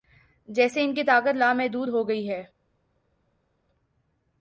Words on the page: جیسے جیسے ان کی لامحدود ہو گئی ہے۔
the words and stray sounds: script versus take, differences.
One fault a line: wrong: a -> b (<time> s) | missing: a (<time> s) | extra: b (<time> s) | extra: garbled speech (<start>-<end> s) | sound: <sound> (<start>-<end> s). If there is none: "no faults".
missing: جیسے (0.8 s)
extra: طاقت (1.0 s)